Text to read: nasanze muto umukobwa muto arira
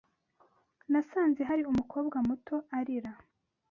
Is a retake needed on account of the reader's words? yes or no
yes